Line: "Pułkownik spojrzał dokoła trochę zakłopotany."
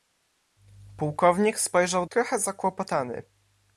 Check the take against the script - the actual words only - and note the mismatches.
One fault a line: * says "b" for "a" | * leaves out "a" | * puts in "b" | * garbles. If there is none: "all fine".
* leaves out "dokoła"